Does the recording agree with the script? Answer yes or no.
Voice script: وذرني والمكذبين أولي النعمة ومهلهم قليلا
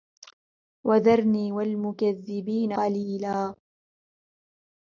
no